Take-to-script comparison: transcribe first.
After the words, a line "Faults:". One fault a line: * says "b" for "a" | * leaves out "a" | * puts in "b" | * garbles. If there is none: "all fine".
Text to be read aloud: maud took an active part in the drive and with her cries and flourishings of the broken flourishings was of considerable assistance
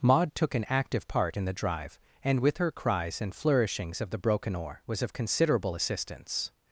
maud took an active part in the drive and with her cries and flourishings of the broken oar was of considerable assistance
Faults:
* says "oar" for "flourishings"